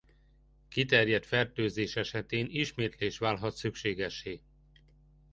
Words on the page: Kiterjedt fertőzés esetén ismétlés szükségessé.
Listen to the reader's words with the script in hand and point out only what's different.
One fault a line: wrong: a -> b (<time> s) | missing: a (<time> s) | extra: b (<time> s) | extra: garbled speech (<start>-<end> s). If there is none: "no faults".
extra: válhat (3.2 s)